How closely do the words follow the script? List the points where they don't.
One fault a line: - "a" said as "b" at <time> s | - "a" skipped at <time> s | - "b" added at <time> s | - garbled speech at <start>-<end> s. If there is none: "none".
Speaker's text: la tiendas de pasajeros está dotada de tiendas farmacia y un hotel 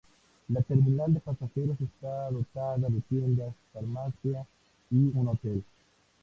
- "tiendas" said as "terminal" at 0.6 s